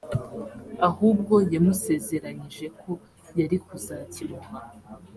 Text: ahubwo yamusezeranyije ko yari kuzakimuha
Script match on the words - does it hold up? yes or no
yes